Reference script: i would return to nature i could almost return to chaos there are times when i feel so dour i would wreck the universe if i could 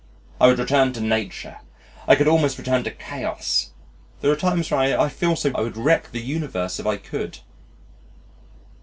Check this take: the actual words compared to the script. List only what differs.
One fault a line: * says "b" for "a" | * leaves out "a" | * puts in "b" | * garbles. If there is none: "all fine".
* leaves out "dour"